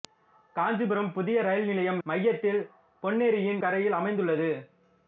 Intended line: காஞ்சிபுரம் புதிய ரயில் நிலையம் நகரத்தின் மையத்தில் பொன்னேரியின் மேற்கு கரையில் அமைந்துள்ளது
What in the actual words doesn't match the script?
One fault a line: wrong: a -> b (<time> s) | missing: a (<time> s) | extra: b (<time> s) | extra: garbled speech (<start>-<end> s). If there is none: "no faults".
missing: நகரத்தின் (2.0 s)
missing: மேற்கு (3.6 s)